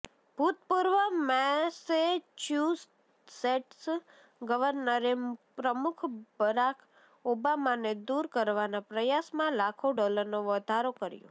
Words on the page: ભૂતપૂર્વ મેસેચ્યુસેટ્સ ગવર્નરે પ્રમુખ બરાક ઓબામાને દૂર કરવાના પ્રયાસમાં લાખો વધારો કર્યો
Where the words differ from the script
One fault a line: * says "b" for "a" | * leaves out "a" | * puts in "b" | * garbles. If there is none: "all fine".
* puts in "ડોલરનો"